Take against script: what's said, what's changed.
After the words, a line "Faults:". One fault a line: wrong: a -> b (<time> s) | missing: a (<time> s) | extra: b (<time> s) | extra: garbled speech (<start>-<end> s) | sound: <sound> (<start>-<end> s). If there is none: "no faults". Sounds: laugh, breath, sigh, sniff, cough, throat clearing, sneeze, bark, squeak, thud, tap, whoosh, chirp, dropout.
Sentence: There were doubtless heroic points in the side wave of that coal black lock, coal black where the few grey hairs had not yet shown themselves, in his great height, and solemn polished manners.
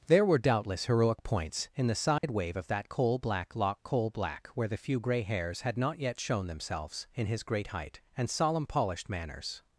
There were doubtless heroic points in the side wave of that coal black lock, coal black where the few grey hairs had not yet shown themselves, in his great height, and solemn polished manners.
Faults:
sound: dropout (2.2-2.2 s)